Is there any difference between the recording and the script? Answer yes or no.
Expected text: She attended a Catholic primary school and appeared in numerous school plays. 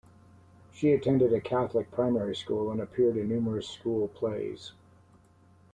no